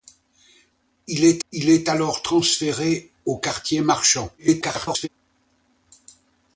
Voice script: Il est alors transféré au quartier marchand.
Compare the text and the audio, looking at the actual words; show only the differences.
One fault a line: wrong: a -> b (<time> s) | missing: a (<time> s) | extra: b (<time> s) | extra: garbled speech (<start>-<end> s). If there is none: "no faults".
extra: il est (1.5 s)
extra: garbled speech (4.4-5.1 s)